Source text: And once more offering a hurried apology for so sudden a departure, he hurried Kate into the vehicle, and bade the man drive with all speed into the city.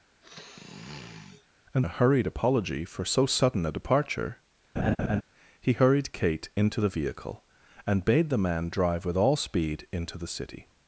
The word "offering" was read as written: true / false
false